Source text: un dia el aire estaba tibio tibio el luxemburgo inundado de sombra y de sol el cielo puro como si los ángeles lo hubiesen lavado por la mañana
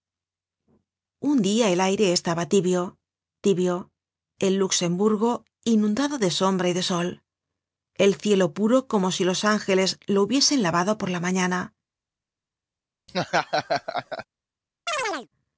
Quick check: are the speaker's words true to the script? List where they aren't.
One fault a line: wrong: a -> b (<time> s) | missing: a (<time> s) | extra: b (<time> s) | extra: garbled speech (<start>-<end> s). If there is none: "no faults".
no faults